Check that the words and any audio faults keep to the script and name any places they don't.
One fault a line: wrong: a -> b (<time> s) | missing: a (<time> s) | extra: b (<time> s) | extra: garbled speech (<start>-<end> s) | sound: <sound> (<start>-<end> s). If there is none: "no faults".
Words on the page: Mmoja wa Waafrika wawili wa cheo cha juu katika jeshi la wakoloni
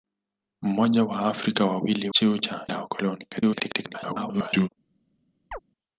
missing: wa (2.1 s)
missing: juu katika jeshi (2.7 s)
extra: garbled speech (3.3-4.7 s)
sound: chirp (5.5-5.6 s)